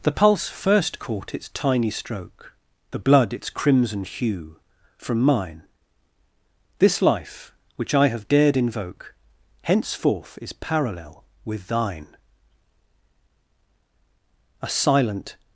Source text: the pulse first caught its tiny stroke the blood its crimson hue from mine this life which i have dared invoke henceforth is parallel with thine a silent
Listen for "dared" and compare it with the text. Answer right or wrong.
right